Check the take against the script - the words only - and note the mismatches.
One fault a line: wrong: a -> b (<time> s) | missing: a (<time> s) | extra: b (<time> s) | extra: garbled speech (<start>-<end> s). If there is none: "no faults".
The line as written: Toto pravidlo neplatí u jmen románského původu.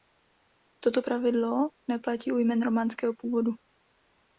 no faults